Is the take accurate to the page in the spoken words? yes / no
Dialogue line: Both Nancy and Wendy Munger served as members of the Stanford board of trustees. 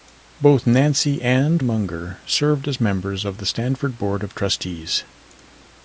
no